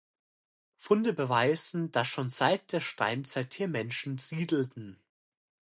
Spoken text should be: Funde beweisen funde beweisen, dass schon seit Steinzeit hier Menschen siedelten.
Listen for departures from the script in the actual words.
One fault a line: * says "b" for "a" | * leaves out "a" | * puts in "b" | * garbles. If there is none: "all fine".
* leaves out "funde beweisen"
* puts in "der"